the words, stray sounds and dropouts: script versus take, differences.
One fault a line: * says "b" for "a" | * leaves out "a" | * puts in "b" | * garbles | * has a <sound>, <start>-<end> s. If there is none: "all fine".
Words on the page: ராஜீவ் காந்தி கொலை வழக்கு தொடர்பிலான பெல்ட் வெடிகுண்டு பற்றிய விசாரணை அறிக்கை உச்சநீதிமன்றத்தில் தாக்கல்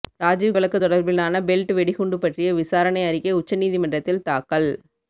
* leaves out "காந்தி கொலை"